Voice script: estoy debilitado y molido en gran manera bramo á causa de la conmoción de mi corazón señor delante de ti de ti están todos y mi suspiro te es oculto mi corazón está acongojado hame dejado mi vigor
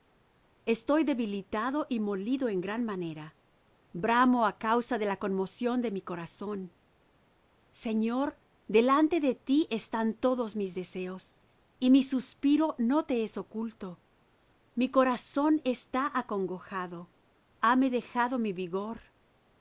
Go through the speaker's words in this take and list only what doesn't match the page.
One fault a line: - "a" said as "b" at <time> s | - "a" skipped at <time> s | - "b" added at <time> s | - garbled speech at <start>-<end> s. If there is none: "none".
- "de ti están todos" said as "están todos mis deseos" at 9.7 s
- "no" added at 12.8 s